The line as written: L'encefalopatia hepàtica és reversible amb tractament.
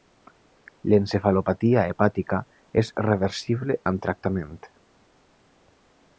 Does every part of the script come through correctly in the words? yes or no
yes